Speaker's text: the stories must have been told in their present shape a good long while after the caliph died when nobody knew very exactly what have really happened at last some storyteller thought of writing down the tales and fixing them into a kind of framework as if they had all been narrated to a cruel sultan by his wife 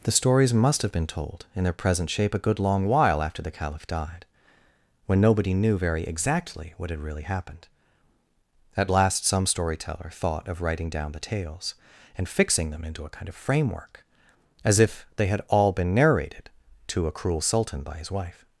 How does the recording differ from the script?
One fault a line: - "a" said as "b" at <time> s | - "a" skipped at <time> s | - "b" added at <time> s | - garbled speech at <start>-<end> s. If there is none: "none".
- "have" said as "had" at 6.9 s